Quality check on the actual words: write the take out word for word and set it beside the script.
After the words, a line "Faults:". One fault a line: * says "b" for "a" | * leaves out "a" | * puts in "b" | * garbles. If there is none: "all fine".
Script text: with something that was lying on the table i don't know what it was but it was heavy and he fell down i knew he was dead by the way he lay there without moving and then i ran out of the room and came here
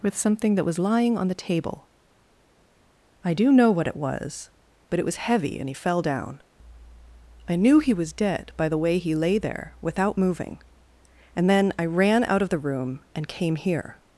with something that was lying on the table i do know what it was but it was heavy and he fell down i knew he was dead by the way he lay there without moving and then i ran out of the room and came here
Faults:
* says "do" for "don't"